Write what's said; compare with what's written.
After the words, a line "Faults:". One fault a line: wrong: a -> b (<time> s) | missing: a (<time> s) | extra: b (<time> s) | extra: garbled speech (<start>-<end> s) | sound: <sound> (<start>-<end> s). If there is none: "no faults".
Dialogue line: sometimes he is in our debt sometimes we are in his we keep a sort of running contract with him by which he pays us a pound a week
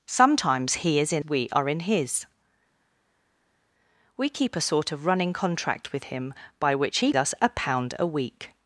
sometimes he is in we are in his we keep a sort of running contract with him by which he us a pound a week
Faults:
missing: our debt sometimes (1.2 s)
missing: pays (7.1 s)